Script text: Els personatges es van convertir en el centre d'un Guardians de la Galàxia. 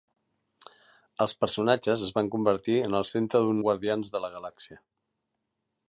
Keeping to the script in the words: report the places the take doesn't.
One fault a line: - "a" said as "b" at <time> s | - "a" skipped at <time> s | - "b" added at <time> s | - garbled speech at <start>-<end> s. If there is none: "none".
none